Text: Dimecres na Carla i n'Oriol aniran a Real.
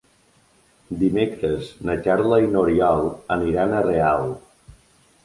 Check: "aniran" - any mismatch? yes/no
no